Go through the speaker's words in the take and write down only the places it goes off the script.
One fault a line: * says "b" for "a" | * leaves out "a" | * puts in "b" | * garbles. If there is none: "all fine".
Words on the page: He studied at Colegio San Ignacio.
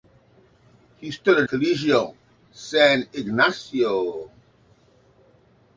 * leaves out "at"